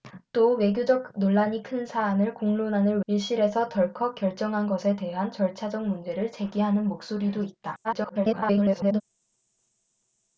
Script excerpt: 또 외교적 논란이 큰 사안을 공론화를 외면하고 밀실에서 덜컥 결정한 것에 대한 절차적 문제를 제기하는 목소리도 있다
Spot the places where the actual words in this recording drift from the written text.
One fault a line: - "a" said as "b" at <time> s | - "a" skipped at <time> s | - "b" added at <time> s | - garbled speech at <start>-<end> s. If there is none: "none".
- "외면하고" skipped at 3.0 s
- garbled speech at 7.8-9.0 s